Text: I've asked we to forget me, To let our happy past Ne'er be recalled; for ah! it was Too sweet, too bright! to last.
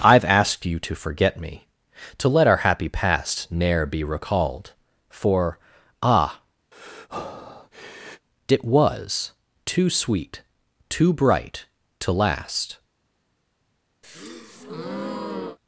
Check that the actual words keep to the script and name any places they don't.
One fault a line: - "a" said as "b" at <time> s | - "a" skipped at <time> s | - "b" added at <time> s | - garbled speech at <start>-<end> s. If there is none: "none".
- "we" said as "you" at 0.7 s